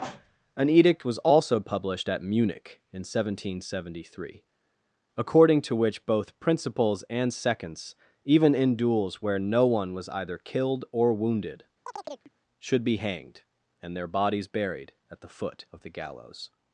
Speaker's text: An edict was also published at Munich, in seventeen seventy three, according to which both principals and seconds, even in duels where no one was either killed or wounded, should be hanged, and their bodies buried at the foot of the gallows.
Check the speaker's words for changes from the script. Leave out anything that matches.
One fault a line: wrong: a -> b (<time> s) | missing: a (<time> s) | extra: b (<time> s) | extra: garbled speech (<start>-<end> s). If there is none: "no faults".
no faults